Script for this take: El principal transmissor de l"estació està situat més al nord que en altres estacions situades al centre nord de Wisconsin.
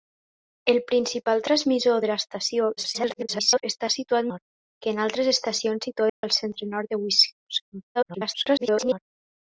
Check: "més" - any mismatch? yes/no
yes